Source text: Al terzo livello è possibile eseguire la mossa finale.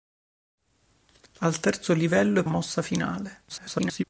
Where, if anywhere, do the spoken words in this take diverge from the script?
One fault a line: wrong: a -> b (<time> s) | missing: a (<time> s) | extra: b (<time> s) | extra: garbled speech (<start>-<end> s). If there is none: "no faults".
missing: possibile eseguire la (2.5 s)
extra: garbled speech (3.5-4.0 s)